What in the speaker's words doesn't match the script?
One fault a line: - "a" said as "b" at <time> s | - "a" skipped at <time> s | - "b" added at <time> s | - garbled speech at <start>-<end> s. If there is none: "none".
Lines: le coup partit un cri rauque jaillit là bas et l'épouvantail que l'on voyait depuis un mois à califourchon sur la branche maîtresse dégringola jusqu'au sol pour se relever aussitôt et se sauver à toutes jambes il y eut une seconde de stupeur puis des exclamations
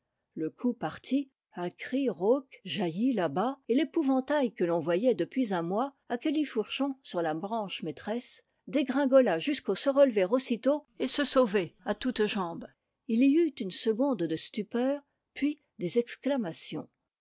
- "sol pour" skipped at 9.8 s